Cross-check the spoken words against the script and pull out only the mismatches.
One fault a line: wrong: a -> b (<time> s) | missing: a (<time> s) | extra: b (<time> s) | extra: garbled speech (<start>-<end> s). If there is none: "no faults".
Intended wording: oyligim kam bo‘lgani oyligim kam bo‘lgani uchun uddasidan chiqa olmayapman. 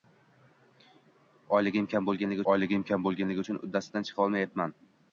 no faults